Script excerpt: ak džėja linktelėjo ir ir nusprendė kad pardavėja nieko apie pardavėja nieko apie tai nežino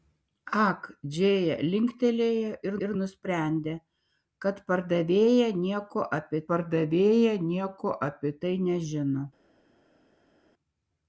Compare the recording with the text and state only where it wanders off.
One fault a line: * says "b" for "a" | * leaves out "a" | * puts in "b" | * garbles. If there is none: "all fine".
all fine